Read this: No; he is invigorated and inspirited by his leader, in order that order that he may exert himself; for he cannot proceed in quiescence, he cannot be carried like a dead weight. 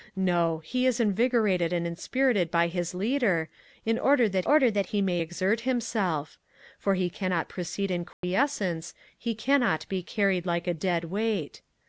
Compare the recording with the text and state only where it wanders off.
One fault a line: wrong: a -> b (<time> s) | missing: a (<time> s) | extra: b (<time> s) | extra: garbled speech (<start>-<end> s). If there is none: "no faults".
no faults